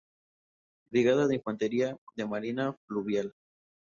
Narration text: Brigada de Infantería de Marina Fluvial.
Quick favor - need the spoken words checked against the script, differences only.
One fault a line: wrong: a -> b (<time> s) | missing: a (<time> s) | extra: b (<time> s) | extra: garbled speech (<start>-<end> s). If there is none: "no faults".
no faults